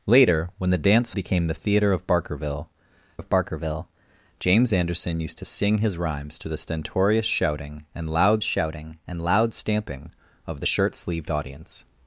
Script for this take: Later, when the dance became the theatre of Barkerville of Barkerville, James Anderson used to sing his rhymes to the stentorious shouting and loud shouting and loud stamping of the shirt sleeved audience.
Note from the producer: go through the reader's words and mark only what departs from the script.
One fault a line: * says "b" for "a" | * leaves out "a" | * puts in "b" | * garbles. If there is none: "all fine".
all fine